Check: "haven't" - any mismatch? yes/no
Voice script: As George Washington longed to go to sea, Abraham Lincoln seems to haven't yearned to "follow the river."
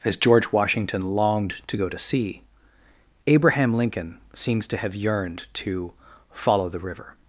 yes